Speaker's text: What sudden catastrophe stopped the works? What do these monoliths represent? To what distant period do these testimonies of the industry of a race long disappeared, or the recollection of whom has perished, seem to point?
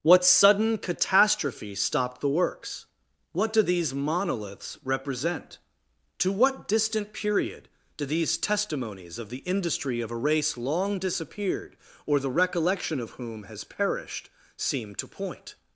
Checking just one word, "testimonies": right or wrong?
right